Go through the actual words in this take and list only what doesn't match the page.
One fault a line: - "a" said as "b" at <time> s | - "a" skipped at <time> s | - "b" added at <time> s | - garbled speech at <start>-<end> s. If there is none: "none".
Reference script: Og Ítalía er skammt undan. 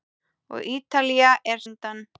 - "skammt" skipped at 1.6 s